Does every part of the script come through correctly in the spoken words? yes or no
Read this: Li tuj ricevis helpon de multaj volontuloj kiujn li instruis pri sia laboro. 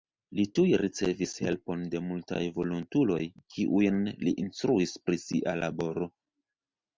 yes